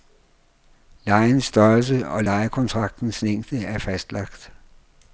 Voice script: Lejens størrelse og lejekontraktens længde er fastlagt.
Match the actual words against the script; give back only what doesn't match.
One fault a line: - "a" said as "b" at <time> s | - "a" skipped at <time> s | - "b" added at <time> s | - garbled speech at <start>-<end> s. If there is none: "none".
none